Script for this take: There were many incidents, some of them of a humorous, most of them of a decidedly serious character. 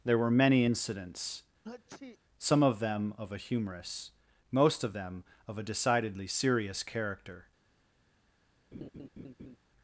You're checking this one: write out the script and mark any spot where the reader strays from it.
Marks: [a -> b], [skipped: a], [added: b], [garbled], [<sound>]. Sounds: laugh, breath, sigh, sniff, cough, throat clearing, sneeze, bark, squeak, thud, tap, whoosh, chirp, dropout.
There were many incidents, [sneeze] some of them of a humorous, most of them of a decidedly serious character. [laugh]